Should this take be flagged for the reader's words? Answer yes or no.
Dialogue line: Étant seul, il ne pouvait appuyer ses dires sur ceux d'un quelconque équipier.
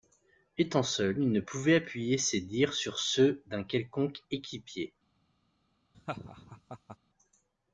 no